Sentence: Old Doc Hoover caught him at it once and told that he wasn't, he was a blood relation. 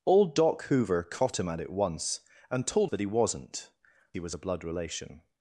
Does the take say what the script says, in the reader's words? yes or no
yes